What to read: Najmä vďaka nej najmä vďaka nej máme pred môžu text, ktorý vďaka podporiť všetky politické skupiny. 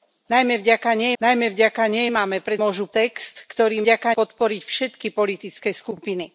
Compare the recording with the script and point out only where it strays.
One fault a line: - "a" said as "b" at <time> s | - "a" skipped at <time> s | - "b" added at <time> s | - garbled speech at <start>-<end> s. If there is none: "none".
none